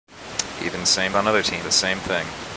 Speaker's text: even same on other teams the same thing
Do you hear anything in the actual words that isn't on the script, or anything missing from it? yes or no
no